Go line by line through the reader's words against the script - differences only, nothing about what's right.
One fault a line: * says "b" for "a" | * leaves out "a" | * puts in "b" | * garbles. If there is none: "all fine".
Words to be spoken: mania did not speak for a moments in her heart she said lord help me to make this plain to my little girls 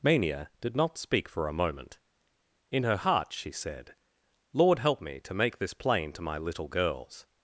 * says "moment" for "moments"